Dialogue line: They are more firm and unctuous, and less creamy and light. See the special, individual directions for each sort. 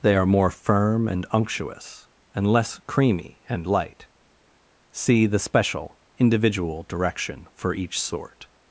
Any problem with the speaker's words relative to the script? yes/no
yes